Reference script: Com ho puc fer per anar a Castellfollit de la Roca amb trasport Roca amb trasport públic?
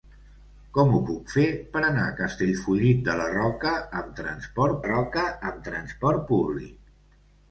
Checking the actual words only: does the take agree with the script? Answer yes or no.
yes